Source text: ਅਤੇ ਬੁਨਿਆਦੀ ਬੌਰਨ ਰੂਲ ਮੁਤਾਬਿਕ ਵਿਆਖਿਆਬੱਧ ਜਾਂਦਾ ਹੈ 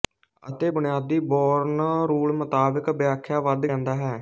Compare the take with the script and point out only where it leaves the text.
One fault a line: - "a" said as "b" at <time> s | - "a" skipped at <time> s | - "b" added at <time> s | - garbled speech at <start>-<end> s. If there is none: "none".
none